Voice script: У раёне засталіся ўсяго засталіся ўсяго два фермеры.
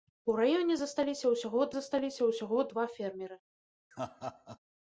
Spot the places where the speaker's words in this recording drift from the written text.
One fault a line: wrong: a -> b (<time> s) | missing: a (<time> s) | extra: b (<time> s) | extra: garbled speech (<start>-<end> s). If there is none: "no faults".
no faults